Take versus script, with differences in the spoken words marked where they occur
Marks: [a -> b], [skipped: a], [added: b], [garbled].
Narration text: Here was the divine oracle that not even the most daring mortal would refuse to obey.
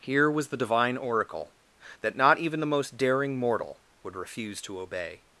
Here was the divine oracle that not even the most daring mortal would refuse to obey.